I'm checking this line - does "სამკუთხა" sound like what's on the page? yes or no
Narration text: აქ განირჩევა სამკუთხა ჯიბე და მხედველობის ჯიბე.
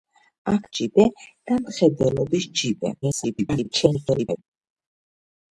no